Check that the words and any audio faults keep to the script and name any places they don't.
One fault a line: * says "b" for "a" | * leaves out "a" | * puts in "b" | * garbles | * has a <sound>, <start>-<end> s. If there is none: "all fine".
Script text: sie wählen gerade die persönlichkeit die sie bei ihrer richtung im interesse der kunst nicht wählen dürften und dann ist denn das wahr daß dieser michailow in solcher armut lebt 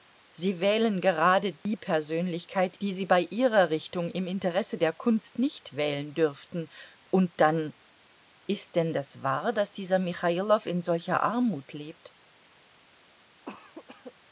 * has a dropout, 1.6-1.7 s
* has a cough, 13.5-14.1 s